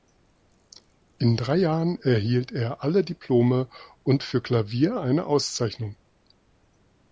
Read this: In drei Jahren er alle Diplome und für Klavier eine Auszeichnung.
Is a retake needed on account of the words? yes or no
yes